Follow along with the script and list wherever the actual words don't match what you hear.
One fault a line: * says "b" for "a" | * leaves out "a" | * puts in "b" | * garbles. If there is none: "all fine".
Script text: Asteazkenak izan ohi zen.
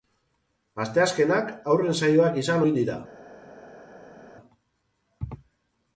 * puts in "haurren saioak"
* says "dira" for "zen"